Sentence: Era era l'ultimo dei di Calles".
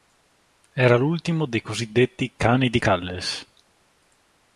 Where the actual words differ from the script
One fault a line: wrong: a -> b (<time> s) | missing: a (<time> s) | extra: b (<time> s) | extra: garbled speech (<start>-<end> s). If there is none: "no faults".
missing: era (0.9 s)
extra: cosiddetti cani (1.6 s)